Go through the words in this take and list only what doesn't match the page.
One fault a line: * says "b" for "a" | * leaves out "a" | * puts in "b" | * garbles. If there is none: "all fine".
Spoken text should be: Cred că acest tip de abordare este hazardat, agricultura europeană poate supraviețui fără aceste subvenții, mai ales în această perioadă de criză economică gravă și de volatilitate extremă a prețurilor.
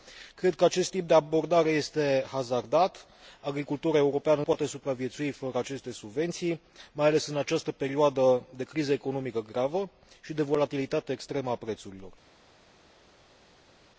all fine